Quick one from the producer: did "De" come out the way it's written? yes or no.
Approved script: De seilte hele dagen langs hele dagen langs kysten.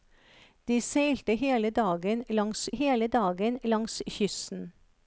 yes